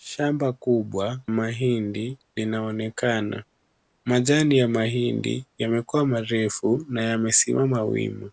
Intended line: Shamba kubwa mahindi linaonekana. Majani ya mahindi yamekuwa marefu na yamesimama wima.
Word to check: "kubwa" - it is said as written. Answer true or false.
true